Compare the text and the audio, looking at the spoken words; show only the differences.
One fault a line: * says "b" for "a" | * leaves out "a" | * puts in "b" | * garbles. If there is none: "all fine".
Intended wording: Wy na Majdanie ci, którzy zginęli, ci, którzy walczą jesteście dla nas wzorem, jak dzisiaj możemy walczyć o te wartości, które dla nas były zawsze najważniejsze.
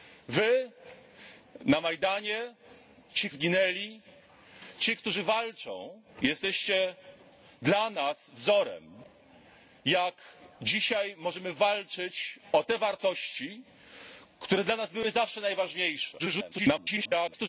* leaves out "którzy"
* garbles